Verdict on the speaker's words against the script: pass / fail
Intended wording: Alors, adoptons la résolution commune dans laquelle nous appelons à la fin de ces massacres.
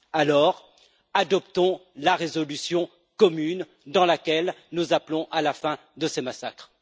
pass